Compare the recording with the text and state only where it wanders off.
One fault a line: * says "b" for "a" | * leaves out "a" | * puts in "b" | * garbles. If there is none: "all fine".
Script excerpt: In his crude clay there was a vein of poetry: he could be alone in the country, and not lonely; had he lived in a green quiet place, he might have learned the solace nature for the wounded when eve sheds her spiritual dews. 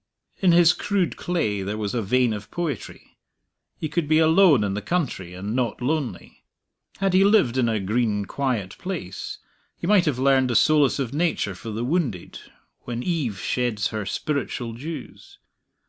* puts in "of"